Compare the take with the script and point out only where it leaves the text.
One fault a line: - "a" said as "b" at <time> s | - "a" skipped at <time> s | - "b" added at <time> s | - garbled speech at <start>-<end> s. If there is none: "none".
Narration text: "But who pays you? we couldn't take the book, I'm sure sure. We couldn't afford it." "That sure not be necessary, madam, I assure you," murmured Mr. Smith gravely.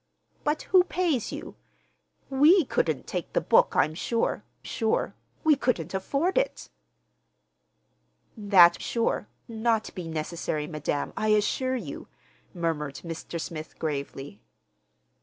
none